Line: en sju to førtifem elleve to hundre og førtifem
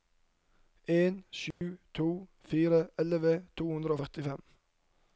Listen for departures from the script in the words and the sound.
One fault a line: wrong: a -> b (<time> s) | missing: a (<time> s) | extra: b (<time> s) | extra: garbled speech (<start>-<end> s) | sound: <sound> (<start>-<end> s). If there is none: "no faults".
sound: dropout (1.5-1.6 s)
wrong: førtifem -> fire (2.5 s)